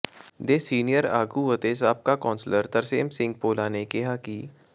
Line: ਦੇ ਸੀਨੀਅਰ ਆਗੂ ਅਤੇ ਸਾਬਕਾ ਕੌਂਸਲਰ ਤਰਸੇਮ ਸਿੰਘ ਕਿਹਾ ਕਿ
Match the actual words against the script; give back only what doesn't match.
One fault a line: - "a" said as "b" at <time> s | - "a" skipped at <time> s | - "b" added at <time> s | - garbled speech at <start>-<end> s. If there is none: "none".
- "ਭੋਲਾ ਨੇ" added at 3.4 s